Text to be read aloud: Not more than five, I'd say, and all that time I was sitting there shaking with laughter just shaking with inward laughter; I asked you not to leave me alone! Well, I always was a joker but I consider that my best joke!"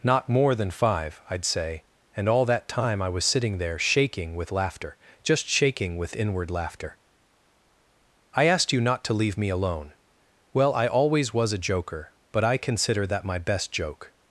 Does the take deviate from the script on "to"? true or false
false